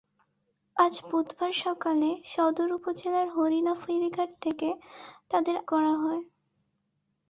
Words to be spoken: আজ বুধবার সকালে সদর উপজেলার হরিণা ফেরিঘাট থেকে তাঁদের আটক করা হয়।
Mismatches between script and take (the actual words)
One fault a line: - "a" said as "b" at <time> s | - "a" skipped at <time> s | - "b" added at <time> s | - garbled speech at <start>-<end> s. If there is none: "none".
- "আটক" skipped at 5.5 s